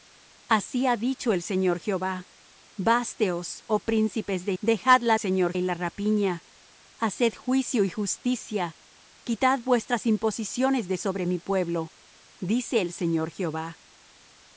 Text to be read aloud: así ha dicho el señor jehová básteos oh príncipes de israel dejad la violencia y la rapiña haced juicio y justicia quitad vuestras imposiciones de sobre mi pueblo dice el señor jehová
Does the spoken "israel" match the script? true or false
false